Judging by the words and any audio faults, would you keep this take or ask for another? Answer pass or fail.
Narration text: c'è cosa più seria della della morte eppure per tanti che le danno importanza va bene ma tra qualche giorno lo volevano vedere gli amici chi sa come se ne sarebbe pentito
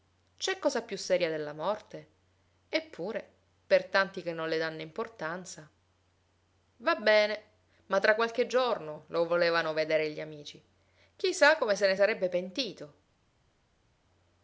fail